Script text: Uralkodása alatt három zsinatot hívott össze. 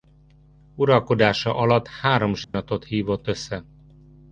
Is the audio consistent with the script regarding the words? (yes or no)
yes